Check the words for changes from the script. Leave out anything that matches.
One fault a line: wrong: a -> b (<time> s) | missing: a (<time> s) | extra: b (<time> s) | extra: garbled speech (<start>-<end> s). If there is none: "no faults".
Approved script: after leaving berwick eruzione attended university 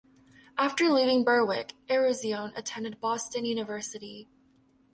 extra: boston (3.0 s)